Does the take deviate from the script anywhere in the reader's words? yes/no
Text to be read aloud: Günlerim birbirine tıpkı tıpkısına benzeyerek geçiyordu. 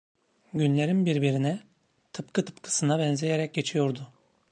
no